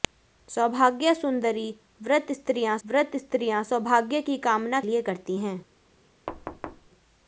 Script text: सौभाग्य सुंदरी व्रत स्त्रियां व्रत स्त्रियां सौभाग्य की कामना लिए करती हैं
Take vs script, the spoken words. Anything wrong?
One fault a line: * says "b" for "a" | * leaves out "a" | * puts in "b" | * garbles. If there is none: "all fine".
all fine